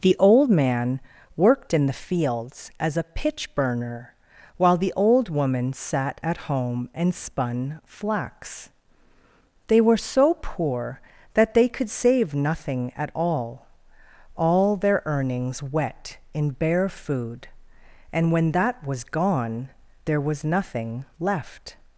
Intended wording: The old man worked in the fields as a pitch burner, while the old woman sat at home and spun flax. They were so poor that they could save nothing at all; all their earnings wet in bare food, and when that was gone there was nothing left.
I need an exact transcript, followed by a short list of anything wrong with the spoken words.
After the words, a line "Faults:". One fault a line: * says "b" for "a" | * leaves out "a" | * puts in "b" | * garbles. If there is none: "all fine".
The old man worked in the fields as a pitch burner, while the old woman sat at home and spun flax. They were so poor that they could save nothing at all; all their earnings wet in bare food, and when that was gone there was nothing left.
Faults:
all fine